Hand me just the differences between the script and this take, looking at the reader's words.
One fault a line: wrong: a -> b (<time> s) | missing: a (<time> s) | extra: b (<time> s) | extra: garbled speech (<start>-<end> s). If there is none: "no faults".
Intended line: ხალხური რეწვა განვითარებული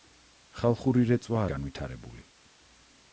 no faults